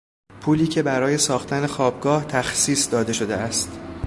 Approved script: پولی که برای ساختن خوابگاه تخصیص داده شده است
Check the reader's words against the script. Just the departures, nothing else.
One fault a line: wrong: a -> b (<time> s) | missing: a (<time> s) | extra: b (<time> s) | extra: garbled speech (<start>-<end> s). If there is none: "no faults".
no faults